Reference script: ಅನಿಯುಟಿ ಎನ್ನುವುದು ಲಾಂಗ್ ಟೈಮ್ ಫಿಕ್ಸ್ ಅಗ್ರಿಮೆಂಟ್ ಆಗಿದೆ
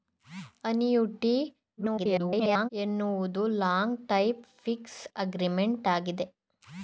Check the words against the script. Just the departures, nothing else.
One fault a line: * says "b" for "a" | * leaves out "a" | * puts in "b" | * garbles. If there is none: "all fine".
* garbles